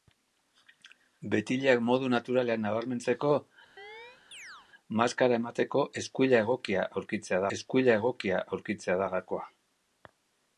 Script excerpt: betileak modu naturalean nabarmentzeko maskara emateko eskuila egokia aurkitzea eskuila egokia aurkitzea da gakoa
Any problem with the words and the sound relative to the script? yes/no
yes